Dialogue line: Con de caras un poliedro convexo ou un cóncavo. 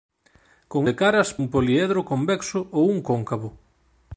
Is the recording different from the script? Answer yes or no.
no